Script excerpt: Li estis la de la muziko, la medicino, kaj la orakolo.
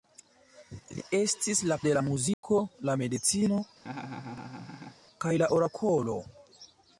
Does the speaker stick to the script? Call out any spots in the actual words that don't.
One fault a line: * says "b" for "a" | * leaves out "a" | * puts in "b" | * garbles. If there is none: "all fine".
all fine